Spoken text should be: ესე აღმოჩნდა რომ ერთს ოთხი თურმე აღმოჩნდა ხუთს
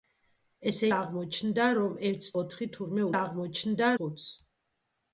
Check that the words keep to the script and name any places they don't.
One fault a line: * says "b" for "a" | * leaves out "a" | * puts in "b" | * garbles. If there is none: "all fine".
all fine